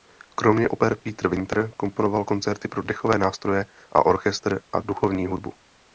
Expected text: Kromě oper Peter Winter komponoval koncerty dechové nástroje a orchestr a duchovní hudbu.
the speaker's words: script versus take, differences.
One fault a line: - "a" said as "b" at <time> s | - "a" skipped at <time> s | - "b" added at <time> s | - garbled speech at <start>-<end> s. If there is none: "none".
- "pro" added at 2.7 s